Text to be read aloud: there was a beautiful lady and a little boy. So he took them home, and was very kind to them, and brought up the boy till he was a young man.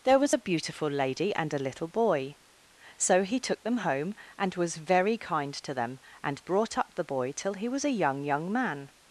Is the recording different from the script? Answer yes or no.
yes